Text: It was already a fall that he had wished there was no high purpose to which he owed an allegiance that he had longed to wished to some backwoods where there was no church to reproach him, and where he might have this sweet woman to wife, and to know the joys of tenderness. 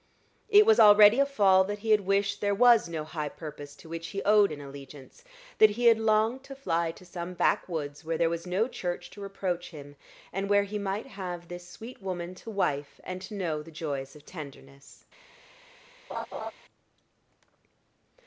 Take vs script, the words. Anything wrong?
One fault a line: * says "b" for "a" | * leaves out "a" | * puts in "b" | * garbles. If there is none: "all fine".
* says "fly" for "wished"